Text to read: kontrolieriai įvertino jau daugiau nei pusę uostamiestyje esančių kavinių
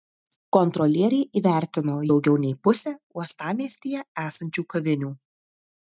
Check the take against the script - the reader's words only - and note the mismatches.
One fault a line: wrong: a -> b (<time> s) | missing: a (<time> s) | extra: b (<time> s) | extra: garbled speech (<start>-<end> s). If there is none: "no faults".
missing: jau (2.0 s)